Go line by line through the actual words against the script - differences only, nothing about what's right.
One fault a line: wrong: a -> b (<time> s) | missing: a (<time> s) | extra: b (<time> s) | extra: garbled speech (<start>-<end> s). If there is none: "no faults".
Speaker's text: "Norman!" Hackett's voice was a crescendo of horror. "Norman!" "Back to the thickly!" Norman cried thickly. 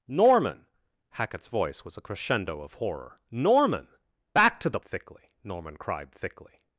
no faults